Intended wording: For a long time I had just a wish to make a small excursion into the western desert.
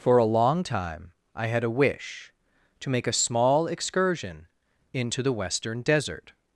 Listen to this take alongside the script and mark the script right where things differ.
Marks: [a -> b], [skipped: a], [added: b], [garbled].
For a long time I had [skipped: just] a wish to make a small excursion into the western desert.